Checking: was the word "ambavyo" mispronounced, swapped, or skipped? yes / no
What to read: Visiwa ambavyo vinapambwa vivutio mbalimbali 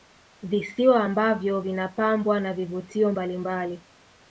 no